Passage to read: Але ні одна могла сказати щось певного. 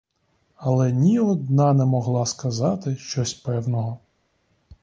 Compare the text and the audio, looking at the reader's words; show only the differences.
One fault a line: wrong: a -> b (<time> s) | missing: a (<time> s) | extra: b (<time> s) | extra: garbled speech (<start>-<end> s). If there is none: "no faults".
extra: не (1.7 s)